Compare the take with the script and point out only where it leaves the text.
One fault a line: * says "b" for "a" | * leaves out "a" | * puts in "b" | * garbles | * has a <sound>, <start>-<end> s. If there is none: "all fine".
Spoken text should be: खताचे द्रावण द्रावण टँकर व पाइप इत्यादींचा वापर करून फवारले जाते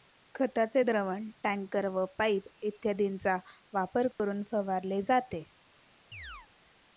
* leaves out "द्रावण"
* has a dropout, 4.1-4.2 s
* has a chirp, 6.1-6.5 s